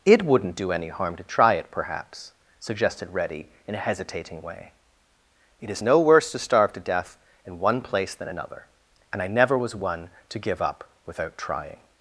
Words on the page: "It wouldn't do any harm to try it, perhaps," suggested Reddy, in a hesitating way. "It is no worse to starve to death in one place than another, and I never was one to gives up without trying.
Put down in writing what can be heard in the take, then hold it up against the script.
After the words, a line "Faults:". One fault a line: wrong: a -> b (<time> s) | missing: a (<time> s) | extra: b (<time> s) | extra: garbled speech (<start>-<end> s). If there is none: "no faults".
"It wouldn't do any harm to try it, perhaps," suggested Reddy, in a hesitating way. "It is no worse to starve to death in one place than another, and I never was one to give up without trying.
Faults:
wrong: gives -> give (10.4 s)